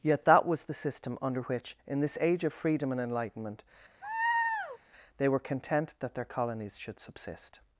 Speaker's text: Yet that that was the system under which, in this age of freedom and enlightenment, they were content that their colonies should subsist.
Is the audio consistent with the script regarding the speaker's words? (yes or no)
no